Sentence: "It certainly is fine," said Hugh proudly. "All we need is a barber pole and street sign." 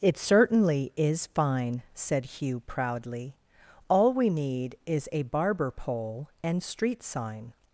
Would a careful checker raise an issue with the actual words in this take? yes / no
no